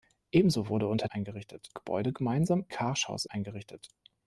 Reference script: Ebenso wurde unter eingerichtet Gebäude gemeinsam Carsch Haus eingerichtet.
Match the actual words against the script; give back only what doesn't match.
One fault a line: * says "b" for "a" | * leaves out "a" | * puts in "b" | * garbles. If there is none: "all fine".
all fine